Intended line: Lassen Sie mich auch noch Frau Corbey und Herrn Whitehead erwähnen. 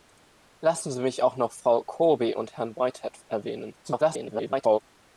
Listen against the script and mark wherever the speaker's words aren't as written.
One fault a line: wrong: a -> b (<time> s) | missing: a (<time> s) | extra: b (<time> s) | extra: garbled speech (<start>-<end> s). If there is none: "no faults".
extra: garbled speech (3.8-4.8 s)